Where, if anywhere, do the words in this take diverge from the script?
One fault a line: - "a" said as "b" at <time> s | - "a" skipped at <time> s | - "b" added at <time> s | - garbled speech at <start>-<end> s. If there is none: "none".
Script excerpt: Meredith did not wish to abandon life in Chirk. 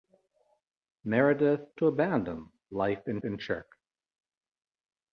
- "did not wish" skipped at 1.6 s
- "in" added at 3.2 s